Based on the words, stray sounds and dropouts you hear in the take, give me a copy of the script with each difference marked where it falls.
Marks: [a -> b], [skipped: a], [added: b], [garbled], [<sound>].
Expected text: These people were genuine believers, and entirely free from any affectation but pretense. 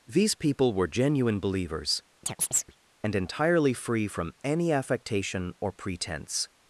These people were genuine believers, [chirp] and entirely free from any affectation [but -> or] pretense.